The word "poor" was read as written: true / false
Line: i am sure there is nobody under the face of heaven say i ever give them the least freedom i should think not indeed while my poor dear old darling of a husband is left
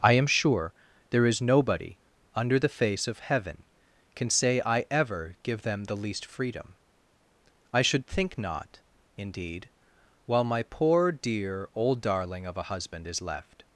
true